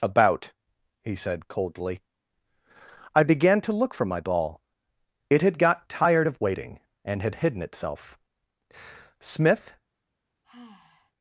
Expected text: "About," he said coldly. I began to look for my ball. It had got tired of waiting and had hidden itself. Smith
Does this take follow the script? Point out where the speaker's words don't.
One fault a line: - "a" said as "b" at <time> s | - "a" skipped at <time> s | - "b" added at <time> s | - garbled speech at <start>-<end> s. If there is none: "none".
none